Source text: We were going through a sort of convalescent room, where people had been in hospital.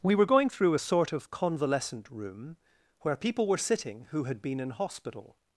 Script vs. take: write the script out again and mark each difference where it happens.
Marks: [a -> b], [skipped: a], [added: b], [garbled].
We were going through a sort of convalescent room, where people [added: were sitting who] had been in hospital.